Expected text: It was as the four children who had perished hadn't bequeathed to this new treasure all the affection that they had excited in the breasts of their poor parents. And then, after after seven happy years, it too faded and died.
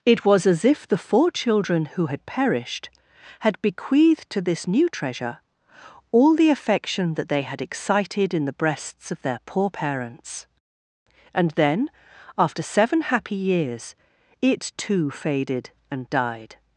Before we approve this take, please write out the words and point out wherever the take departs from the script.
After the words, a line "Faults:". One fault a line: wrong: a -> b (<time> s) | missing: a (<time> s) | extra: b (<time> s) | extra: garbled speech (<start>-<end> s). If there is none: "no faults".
It was as if the four children who had perished had bequeathed to this new treasure all the affection that they had excited in the breasts of their poor parents. And then, after seven happy years, it too faded and died.
Faults:
extra: if (0.7 s)
wrong: hadn't -> had (3.4 s)
missing: after (12.6 s)